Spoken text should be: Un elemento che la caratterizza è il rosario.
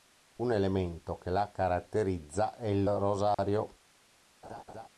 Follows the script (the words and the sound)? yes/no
no